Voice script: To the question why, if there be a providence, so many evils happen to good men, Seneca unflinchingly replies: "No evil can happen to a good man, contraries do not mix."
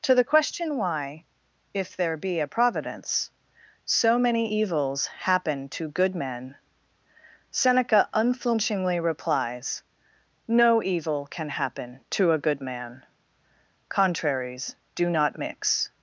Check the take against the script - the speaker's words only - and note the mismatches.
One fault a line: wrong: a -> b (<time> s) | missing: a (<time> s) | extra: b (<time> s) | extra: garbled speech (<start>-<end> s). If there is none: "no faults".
no faults